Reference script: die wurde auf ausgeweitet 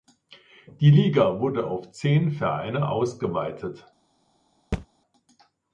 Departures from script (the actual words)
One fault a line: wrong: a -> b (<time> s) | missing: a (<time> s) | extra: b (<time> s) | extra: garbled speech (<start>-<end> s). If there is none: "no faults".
extra: liga (0.9 s)
extra: zehn vereine (1.9 s)